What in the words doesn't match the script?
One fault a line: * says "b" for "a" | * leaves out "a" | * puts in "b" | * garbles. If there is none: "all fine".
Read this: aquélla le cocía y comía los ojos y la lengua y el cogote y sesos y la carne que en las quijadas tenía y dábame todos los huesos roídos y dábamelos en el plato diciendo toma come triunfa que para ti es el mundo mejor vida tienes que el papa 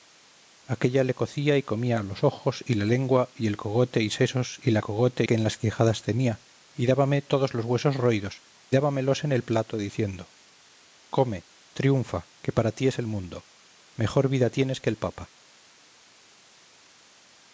* says "cogote" for "carne"
* leaves out "y"
* leaves out "toma"